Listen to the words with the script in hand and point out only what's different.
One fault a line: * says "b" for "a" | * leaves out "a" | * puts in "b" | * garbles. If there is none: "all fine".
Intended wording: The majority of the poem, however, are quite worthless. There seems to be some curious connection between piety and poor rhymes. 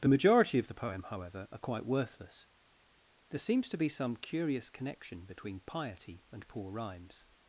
all fine